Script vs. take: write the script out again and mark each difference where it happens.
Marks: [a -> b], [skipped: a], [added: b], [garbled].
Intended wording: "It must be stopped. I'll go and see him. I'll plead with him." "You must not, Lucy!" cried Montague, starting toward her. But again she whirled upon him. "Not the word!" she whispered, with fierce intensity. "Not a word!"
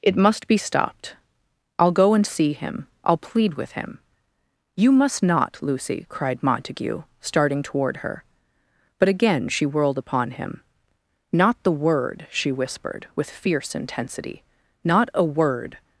"It must be stopped. I'll go and see him. I'll plead with him." "You must not, Lucy!" cried Montague, starting toward her. But again she whirled upon him. "Not the word!" she whispered, with fierce intensity. "Not a word!"